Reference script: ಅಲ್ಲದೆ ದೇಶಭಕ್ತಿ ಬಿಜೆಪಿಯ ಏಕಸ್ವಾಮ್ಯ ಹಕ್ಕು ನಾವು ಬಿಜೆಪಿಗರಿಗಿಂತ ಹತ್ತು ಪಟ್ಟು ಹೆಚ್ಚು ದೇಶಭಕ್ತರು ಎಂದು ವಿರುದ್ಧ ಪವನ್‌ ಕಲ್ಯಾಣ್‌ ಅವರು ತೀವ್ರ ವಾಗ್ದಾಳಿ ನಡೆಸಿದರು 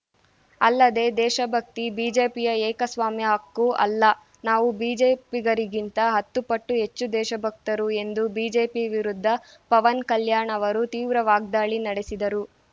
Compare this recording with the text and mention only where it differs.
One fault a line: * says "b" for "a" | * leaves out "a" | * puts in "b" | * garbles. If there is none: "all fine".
* puts in "ಅಲ್ಲ"
* puts in "ಬಿಜೆಪಿ"